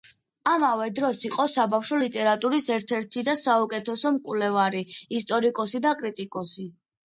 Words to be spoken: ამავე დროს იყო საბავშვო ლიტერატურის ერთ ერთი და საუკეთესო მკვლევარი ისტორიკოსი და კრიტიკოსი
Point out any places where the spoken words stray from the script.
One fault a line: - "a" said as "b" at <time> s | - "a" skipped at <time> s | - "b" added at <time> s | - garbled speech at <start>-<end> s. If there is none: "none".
none